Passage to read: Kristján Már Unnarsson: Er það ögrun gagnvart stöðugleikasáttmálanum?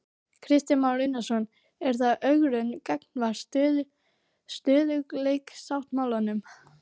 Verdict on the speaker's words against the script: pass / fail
pass